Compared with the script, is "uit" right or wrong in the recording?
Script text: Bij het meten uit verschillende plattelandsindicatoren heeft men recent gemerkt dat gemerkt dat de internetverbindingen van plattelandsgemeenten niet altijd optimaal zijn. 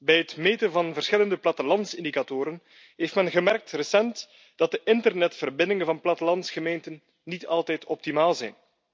wrong